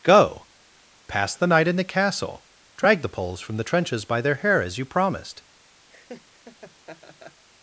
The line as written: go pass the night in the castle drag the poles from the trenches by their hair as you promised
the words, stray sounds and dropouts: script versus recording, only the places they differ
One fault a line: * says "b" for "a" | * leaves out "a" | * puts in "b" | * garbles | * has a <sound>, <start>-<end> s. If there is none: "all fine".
* has a laugh, 5.9-7.4 s